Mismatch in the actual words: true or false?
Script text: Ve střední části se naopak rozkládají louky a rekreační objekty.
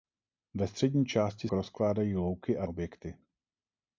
true